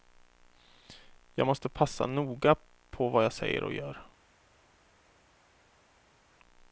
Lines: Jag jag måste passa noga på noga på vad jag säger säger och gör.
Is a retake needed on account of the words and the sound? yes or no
yes